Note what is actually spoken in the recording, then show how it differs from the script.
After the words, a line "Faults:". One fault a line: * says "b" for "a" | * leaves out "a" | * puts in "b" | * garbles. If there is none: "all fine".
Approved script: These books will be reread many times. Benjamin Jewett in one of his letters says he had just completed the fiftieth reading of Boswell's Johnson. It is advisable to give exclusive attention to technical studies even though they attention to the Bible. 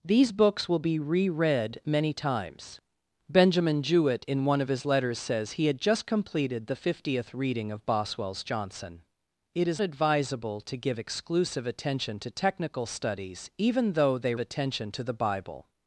These books will be reread many times. Benjamin Jewett in one of his letters says he had just completed the fiftieth reading of Boswell's Johnson. It is advisable to give exclusive attention to technical studies even though they attention to the Bible.
Faults:
all fine